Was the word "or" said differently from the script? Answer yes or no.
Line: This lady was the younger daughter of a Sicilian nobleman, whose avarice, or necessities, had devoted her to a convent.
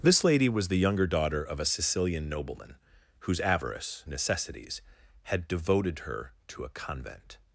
yes